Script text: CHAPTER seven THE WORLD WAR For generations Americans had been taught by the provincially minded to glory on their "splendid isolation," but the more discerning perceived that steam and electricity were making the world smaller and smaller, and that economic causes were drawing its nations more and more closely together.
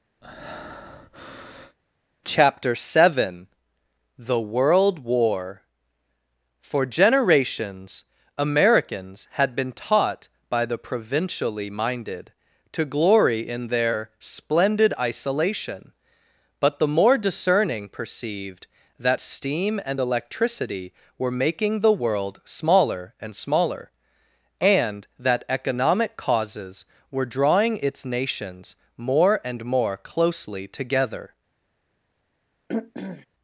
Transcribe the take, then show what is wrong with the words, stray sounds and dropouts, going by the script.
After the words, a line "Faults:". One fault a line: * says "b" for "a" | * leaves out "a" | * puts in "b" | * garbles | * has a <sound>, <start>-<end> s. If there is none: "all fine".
CHAPTER seven THE WORLD WAR For generations Americans had been taught by the provincially minded to glory in their "splendid isolation," but the more discerning perceived that steam and electricity were making the world smaller and smaller, and that economic causes were drawing its nations more and more closely together.
Faults:
* has a breath, 0.2-1.8 s
* says "in" for "on"
* has a throat clearing, 32.7-33.3 s